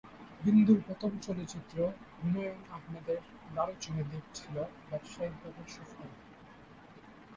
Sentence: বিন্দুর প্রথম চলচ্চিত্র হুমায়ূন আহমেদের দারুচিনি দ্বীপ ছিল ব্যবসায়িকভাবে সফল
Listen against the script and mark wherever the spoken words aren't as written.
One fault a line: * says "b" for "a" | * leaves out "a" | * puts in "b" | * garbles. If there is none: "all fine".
all fine